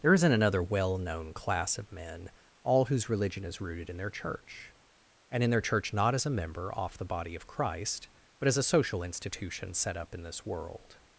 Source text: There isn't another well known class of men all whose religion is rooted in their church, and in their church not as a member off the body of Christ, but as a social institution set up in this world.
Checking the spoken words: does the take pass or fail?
pass